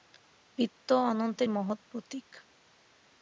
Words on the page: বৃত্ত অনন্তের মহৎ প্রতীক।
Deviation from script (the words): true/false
false